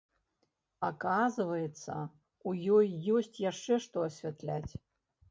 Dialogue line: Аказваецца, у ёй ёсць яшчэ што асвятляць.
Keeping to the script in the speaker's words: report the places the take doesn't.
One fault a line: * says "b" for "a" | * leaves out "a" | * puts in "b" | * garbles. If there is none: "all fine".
all fine